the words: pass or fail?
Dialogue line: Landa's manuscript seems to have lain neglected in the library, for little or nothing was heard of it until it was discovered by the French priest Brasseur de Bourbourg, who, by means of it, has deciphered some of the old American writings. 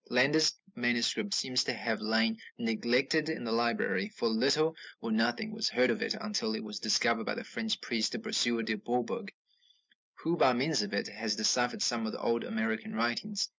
pass